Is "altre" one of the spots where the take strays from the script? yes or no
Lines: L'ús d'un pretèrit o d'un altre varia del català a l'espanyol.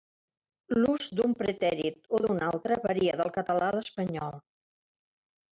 no